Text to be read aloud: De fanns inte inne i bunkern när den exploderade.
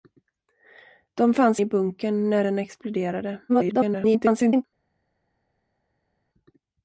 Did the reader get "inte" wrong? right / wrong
wrong